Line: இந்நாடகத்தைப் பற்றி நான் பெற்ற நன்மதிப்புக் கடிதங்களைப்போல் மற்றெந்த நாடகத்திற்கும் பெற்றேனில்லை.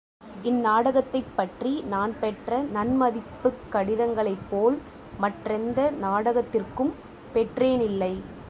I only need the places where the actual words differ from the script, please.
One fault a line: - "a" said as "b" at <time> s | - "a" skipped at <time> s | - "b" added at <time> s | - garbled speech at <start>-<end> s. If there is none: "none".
none